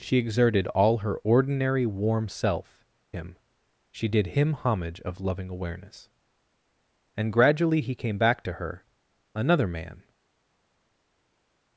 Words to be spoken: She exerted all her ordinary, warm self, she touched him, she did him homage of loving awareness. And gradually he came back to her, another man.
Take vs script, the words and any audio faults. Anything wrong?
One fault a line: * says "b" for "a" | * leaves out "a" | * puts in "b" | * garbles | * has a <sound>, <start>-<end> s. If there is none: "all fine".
* leaves out "she touched"